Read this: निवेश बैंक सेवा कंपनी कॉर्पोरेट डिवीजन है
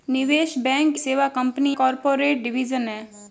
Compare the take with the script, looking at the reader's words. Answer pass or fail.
pass